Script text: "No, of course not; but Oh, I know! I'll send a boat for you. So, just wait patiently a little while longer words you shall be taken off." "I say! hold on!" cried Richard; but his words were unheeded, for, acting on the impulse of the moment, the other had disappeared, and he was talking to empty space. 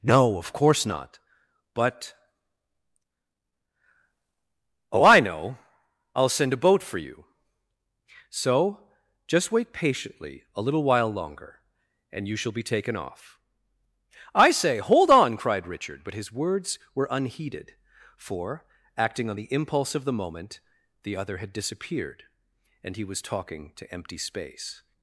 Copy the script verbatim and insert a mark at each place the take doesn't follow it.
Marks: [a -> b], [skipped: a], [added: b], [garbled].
"No, of course not; but Oh, I know! I'll send a boat for you. So, just wait patiently a little while longer [words -> and] you shall be taken off." "I say! hold on!" cried Richard; but his words were unheeded, for, acting on the impulse of the moment, the other had disappeared, and he was talking to empty space.